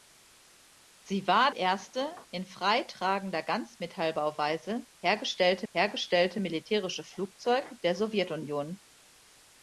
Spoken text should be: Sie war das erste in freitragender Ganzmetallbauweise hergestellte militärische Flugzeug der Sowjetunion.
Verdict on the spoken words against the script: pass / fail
fail